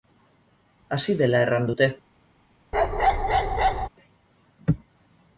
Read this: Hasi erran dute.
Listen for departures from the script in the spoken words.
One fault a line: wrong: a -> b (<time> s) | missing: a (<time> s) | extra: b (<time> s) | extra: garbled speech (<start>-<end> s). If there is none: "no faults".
extra: dela (1.2 s)